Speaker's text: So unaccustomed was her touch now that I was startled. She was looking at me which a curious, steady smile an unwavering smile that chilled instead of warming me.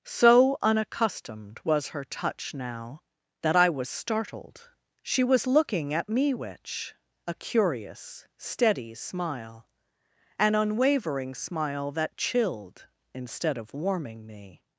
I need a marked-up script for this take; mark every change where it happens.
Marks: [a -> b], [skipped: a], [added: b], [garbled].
So unaccustomed was her touch now that I was startled. She was looking at me which a curious, steady smile an unwavering smile that chilled instead of warming me.